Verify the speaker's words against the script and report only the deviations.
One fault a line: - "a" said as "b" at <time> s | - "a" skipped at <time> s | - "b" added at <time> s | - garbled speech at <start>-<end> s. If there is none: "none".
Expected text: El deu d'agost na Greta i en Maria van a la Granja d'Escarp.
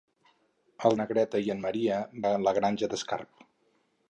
- "deu d'agost" skipped at 0.9 s
- "van" skipped at 2.0 s